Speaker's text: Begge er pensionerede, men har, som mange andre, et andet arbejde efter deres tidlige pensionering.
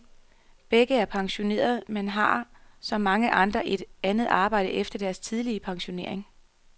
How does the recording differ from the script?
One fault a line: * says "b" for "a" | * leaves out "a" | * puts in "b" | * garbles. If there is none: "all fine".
all fine